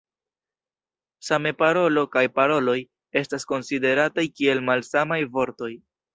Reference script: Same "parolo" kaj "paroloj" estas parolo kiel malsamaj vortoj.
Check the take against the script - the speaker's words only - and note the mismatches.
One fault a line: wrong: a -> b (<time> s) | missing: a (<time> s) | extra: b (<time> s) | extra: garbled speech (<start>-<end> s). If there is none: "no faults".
wrong: parolo -> konsiderataj (3.5 s)